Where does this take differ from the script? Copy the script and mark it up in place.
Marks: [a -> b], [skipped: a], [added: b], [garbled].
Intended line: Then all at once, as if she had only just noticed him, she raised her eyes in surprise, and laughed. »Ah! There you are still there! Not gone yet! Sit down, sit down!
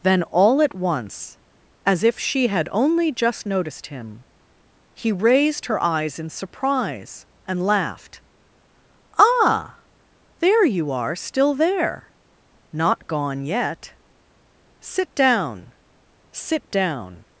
Then all at once, as if she had only just noticed him, [she -> he] raised her eyes in surprise, and laughed. »Ah! There you are still there! Not gone yet! Sit down, sit down!